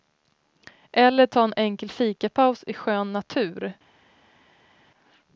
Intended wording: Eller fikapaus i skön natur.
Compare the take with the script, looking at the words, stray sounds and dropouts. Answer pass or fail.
fail